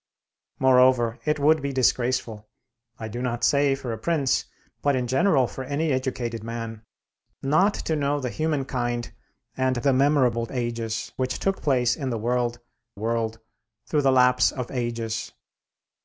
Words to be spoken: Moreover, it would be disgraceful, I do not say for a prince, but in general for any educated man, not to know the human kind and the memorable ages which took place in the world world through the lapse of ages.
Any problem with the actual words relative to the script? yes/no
no